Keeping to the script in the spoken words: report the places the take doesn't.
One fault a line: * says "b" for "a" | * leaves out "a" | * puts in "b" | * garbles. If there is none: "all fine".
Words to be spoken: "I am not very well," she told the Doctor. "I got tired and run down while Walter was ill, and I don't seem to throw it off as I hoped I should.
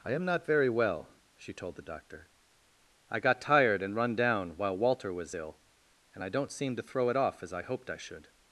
all fine